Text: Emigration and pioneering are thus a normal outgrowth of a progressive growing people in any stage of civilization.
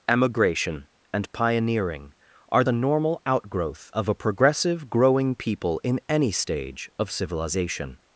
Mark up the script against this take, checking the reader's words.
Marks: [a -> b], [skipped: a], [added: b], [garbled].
Emigration and pioneering are [skipped: thus] a normal outgrowth of a progressive growing people in any stage of civilization.